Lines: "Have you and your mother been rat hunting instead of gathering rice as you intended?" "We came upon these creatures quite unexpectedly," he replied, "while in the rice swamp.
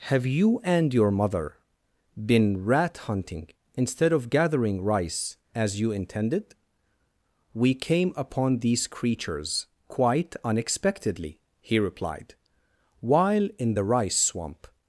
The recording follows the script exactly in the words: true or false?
true